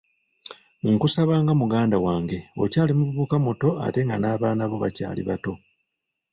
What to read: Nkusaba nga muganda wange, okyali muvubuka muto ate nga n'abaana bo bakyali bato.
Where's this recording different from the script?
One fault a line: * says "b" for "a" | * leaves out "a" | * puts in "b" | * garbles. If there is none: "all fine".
all fine